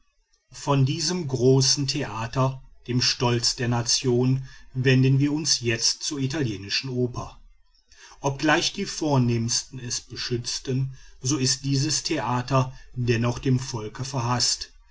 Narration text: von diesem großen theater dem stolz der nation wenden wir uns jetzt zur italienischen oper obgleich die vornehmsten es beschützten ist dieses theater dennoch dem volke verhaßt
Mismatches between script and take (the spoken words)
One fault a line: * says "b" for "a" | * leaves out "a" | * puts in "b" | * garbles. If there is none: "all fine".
* puts in "so"